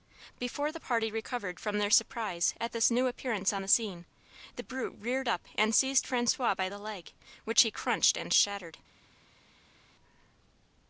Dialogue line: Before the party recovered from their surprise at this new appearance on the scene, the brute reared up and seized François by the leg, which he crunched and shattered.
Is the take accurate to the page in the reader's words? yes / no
yes